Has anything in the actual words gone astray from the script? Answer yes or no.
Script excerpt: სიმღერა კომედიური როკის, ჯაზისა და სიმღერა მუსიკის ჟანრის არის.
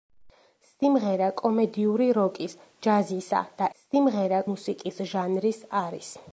no